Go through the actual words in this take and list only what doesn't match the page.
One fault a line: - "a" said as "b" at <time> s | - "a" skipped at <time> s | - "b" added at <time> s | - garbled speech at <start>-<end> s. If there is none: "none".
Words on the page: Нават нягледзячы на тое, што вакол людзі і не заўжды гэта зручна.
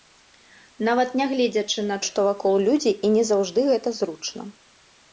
- "тое" skipped at 2.0 s